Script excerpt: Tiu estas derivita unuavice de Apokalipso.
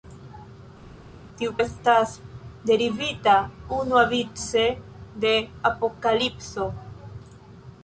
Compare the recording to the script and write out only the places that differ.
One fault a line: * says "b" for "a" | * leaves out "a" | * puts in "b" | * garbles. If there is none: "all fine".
all fine